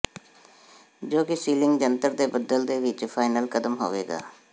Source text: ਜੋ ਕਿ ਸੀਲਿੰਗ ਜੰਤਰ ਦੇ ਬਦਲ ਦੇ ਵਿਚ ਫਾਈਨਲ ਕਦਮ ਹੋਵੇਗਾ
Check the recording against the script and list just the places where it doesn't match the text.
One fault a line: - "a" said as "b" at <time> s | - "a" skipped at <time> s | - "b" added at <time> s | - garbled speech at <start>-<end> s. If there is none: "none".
none